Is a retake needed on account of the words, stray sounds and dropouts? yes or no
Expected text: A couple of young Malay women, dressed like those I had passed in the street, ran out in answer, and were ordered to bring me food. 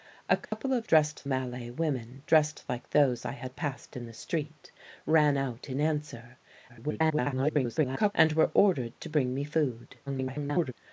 yes